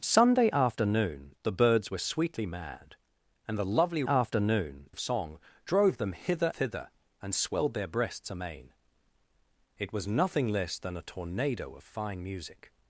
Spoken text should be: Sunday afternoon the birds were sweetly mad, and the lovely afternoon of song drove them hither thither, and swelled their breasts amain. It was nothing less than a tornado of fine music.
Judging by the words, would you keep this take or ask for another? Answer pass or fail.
pass